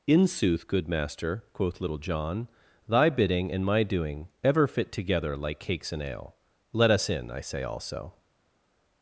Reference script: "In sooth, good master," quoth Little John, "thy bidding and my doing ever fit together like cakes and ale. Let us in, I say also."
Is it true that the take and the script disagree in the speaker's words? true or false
false